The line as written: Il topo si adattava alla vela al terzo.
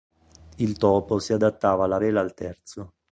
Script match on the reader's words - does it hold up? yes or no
yes